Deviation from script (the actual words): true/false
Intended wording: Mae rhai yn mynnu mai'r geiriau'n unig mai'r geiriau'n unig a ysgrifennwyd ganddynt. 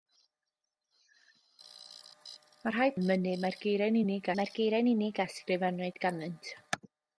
false